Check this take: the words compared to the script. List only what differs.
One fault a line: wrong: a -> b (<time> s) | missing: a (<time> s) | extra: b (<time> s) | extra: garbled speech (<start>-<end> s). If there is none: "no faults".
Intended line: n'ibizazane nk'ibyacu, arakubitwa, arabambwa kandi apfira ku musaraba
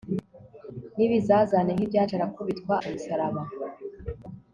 missing: arabambwa kandi apfira (2.8 s)